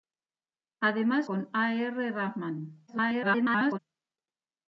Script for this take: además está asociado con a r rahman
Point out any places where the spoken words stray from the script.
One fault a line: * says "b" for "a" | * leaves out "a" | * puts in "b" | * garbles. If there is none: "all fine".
* leaves out "está asociado"
* garbles